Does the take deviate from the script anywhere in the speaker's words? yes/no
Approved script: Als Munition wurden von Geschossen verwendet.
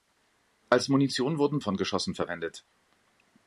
no